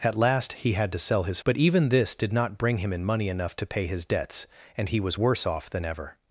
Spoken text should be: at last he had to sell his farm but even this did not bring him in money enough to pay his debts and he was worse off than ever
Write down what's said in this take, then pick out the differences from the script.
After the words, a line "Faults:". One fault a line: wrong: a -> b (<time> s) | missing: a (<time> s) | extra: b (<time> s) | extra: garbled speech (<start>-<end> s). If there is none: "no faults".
at last he had to sell his but even this did not bring him in money enough to pay his debts and he was worse off than ever
Faults:
missing: farm (1.4 s)